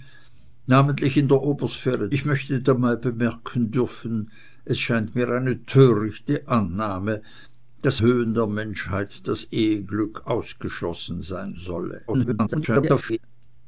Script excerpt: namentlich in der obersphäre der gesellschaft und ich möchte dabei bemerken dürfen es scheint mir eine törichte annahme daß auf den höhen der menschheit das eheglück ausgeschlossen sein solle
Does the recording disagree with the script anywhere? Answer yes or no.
yes